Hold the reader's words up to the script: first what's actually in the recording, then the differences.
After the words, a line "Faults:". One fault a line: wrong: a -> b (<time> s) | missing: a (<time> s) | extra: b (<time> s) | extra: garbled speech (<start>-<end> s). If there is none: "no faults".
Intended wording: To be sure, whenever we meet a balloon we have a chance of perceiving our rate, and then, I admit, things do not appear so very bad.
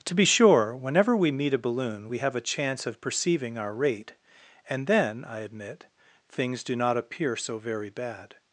To be sure, whenever we meet a balloon we have a chance of perceiving our rate, and then, I admit, things do not appear so very bad.
Faults:
no faults